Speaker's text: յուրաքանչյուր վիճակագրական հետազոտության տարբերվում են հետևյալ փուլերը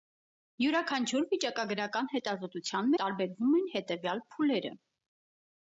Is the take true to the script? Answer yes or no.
yes